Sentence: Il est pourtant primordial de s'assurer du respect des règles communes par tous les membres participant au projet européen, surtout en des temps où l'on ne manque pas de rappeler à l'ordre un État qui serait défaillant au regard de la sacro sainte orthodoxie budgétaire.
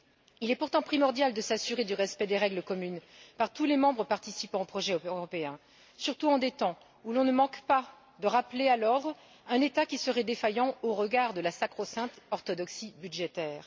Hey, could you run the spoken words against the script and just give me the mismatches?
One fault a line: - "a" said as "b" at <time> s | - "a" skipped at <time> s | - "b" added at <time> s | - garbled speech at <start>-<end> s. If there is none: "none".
none